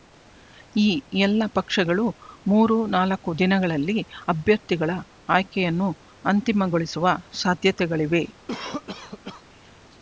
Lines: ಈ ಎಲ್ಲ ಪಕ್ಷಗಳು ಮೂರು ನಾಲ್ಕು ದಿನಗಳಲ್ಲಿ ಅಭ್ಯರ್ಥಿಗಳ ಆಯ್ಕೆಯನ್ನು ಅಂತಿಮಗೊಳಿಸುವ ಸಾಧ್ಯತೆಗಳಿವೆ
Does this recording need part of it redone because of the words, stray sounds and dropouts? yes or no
yes